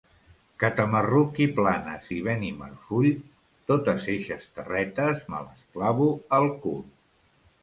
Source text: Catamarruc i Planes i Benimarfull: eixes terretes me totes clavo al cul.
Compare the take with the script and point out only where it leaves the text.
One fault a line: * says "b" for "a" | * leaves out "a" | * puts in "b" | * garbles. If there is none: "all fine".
* puts in "totes"
* says "les" for "totes"